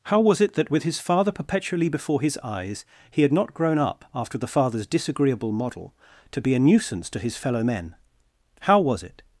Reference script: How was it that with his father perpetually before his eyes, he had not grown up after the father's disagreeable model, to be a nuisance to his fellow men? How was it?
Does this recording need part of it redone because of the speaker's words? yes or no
no